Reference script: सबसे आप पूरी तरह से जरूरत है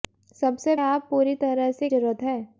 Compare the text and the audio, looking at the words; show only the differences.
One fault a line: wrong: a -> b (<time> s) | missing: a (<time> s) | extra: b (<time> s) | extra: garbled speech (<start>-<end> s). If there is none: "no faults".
no faults